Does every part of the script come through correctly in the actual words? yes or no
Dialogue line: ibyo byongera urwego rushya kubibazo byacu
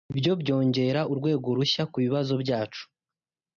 yes